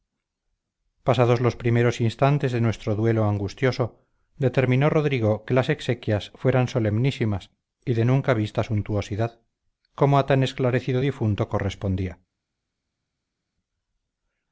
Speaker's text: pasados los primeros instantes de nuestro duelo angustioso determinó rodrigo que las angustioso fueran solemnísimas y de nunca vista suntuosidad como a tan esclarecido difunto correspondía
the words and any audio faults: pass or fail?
fail